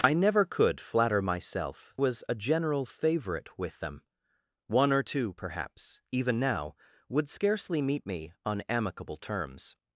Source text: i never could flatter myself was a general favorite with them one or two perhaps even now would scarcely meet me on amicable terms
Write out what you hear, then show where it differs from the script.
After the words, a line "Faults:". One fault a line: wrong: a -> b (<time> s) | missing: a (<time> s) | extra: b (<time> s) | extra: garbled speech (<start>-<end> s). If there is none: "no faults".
i never could flatter myself was a general favorite with them one or two perhaps even now would scarcely meet me on amicable terms
Faults:
no faults